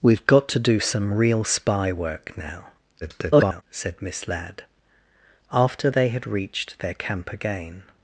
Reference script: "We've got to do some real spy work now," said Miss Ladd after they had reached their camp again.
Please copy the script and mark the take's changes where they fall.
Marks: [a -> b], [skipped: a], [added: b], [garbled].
"We've got to do some real spy work now," [garbled] said Miss Ladd after they had reached their camp again.